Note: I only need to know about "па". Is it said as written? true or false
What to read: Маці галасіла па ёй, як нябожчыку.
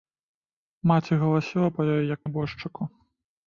true